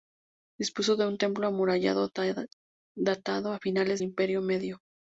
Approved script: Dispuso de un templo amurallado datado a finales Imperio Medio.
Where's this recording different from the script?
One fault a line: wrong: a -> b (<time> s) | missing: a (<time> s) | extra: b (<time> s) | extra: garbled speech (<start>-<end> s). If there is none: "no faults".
no faults